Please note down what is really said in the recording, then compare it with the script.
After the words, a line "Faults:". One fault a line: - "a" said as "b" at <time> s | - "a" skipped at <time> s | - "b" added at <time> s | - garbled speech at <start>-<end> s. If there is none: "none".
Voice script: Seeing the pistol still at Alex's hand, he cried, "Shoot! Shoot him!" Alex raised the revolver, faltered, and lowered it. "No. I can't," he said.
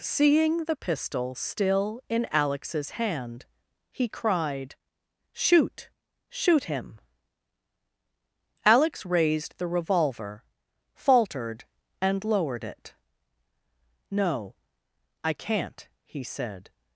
Seeing the pistol still in Alex's hand, he cried, "Shoot! Shoot him!" Alex raised the revolver, faltered, and lowered it. "No. I can't," he said.
Faults:
- "at" said as "in" at 2.1 s